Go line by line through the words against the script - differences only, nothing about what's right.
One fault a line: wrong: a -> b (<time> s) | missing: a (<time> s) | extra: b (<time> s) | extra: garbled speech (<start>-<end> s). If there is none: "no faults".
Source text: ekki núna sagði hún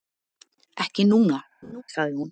no faults